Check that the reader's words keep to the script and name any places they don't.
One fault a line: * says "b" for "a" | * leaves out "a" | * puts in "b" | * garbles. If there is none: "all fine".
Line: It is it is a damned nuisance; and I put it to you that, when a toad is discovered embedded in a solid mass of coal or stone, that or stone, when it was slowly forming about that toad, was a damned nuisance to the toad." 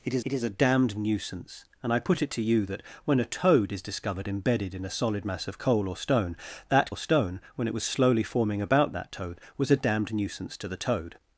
all fine